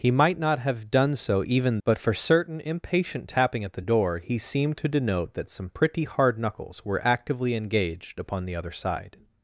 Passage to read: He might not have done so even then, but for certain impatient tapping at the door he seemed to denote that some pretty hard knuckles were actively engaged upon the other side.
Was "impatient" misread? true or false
false